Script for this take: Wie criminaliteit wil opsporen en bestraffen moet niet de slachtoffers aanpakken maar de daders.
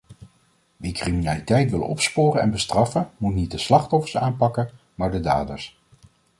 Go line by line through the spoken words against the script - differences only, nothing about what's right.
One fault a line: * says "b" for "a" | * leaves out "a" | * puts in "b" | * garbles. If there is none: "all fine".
all fine